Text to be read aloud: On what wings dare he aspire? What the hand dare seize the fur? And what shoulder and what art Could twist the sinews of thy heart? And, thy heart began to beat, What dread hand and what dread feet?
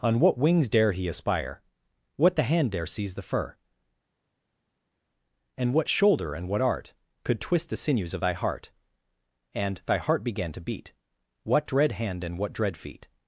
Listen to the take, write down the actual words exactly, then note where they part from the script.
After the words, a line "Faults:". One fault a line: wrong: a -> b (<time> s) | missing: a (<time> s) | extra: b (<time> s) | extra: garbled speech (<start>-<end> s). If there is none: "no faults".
On what wings dare he aspire? What the hand dare seize the fur? And what shoulder and what art Could twist the sinews of thy heart? And, thy heart began to beat, What dread hand and what dread feet?
Faults:
no faults